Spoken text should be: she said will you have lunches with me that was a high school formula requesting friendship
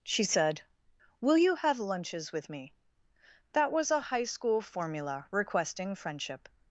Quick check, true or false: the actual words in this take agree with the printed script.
true